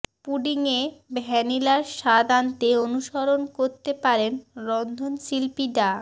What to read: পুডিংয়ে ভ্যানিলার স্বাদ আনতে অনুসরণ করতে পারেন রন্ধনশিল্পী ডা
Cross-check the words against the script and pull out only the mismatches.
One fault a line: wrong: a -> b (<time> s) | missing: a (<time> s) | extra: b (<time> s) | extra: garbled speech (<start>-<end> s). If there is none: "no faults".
no faults